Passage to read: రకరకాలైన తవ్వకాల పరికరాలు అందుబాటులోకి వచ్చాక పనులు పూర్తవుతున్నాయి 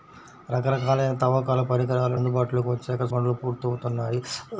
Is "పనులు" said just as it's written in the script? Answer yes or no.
yes